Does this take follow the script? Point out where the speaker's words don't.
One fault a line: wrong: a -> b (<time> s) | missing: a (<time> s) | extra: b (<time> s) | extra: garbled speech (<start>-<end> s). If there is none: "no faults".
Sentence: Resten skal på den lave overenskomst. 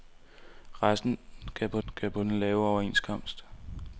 extra: skal på (1.9 s)